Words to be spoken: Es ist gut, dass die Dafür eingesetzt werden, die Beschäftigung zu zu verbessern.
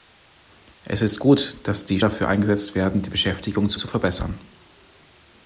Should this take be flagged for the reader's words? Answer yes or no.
no